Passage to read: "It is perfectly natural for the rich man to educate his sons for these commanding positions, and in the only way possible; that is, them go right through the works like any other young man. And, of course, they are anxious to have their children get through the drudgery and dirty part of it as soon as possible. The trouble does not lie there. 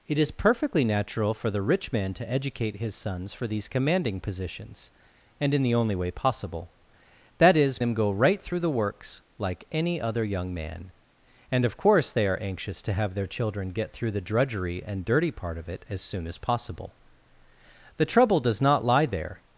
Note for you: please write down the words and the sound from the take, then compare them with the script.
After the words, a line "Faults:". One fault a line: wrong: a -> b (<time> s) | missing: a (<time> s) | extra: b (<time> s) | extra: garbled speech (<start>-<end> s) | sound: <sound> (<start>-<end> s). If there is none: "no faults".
"It is perfectly natural for the rich man to educate his sons for these commanding positions, and in the only way possible; that is, them go right through the works like any other young man. And, of course, they are anxious to have their children get through the drudgery and dirty part of it as soon as possible. The trouble does not lie there.
Faults:
no faults